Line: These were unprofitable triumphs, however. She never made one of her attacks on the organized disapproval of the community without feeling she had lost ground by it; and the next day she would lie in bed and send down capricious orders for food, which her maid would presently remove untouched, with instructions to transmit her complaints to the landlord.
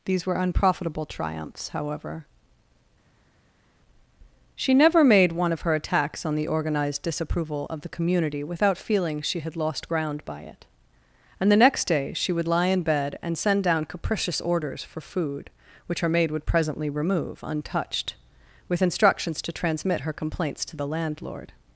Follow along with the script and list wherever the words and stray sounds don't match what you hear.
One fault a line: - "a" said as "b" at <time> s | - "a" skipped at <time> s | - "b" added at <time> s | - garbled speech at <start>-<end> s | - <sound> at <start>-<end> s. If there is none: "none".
none